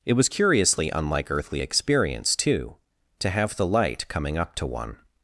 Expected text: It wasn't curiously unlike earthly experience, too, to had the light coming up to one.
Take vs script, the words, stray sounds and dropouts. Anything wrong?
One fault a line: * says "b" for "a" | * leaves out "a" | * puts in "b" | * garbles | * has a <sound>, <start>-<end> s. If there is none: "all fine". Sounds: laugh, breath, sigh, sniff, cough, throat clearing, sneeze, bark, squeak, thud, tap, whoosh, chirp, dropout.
* says "was" for "wasn't"
* says "have" for "had"